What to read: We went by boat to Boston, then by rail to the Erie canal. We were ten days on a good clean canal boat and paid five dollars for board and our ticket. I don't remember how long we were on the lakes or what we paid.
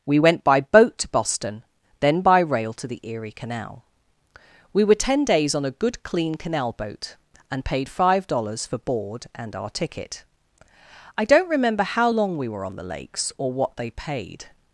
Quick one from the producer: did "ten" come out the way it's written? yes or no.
yes